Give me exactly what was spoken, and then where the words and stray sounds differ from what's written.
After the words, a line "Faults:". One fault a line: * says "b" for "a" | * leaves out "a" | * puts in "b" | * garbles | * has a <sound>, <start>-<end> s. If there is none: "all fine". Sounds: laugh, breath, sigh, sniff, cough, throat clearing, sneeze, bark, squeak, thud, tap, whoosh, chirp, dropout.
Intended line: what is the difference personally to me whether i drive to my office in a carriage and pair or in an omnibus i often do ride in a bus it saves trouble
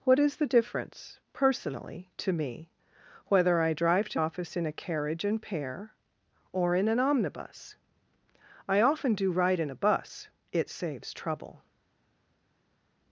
what is the difference personally to me whether i drive to office in a carriage and pair or in an omnibus i often do ride in a bus it saves trouble
Faults:
* leaves out "my"